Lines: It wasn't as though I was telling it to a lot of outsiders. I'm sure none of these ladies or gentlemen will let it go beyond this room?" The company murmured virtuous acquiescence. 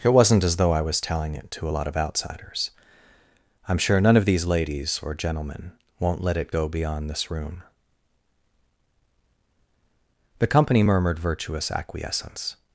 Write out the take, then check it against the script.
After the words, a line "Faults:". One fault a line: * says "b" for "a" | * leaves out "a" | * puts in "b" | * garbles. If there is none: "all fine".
It wasn't as though I was telling it to a lot of outsiders. I'm sure none of these ladies or gentlemen won't let it go beyond this room?" The company murmured virtuous acquiescence.
Faults:
* says "won't" for "will"